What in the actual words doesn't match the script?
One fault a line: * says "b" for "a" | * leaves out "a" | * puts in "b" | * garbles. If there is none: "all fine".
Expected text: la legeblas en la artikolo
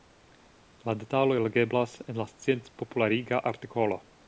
* puts in "detaloj"
* puts in "sciencpopulariga"